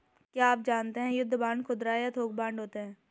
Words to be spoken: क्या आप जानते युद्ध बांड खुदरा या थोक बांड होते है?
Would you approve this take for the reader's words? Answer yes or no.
no